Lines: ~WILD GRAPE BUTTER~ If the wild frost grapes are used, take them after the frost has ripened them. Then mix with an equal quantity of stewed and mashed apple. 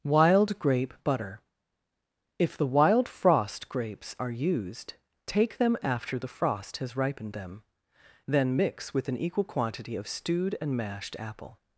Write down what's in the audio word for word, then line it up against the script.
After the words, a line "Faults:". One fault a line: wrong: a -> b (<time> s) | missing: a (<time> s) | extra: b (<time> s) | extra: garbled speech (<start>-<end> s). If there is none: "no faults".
~WILD GRAPE BUTTER~ If the wild frost grapes are used, take them after the frost has ripened them. Then mix with an equal quantity of stewed and mashed apple.
Faults:
no faults